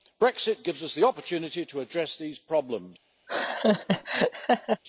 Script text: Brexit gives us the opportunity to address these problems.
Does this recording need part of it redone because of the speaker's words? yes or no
no